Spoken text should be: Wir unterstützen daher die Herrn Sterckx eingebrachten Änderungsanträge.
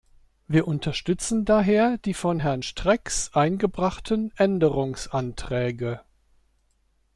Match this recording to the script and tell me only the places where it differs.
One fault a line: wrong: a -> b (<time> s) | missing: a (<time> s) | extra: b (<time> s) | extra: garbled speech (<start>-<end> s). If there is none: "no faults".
extra: von (2.1 s)